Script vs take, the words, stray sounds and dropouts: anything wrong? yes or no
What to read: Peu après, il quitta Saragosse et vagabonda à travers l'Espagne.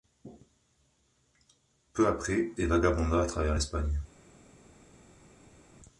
yes